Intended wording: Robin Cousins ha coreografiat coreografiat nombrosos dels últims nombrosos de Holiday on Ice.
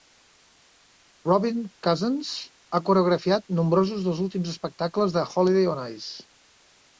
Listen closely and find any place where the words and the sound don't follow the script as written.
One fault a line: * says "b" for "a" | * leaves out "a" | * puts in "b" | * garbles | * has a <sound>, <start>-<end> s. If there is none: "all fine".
* leaves out "coreografiat"
* says "espectacles" for "nombrosos"